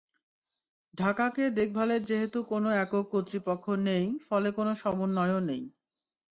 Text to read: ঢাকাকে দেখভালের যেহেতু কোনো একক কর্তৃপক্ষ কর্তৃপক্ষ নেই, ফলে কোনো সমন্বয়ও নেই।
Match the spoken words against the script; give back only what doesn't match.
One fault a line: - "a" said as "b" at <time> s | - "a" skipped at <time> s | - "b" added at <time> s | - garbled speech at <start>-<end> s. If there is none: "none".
- "কর্তৃপক্ষ" skipped at 3.7 s